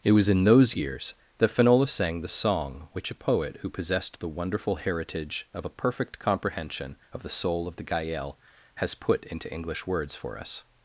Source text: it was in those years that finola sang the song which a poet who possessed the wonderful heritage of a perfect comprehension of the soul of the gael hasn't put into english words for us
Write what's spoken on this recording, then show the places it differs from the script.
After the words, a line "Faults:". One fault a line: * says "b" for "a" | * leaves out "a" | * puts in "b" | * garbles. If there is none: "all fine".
it was in those years that finola sang the song which a poet who possessed the wonderful heritage of a perfect comprehension of the soul of the gael has put into english words for us
Faults:
* says "has" for "hasn't"